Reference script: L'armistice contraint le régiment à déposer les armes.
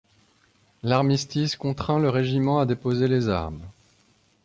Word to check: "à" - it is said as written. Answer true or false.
true